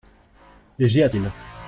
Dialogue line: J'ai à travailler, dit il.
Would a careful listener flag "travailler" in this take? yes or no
yes